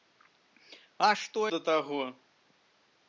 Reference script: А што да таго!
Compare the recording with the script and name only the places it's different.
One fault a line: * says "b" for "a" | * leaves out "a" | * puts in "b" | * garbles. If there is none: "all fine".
all fine